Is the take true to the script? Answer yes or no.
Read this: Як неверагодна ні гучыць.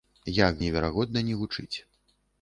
yes